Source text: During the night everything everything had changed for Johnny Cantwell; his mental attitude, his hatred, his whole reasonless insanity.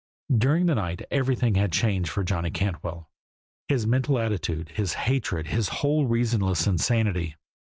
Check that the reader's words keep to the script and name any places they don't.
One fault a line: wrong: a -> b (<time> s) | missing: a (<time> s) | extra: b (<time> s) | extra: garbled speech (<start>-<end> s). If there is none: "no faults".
missing: everything (1.5 s)